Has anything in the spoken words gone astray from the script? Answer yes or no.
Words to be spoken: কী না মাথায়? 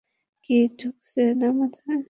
yes